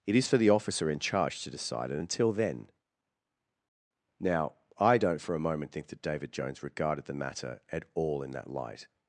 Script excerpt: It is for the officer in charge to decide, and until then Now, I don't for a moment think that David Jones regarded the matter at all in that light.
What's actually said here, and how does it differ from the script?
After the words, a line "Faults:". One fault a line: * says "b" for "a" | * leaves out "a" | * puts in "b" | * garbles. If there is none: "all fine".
It is for the officer in charge to decide, and until then Now, I don't for a moment think that David Jones regarded the matter at all in that light.
Faults:
all fine